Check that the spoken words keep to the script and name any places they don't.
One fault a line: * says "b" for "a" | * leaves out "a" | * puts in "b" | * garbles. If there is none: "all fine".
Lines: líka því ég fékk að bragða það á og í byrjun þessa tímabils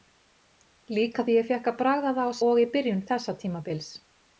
all fine